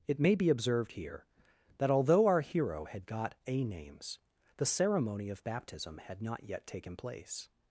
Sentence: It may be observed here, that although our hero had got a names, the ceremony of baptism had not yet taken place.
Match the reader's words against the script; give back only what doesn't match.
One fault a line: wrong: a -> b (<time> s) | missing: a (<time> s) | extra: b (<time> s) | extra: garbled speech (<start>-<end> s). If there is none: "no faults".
no faults